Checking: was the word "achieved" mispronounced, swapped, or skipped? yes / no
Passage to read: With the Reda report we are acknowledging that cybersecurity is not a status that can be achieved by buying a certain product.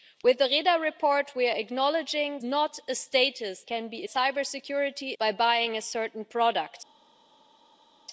yes